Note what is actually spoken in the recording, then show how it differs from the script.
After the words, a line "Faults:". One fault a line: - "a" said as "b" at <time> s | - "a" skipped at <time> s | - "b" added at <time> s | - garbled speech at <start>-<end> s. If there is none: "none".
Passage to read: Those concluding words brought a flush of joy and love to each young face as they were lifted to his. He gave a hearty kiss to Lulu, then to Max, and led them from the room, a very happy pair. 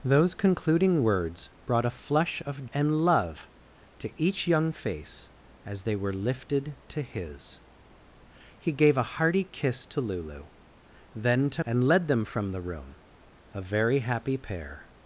Those concluding words brought a flush of and love to each young face as they were lifted to his. He gave a hearty kiss to Lulu, then to And led them from the room, a very happy pair.
Faults:
- "joy" skipped at 2.6 s
- "Max" skipped at 11.6 s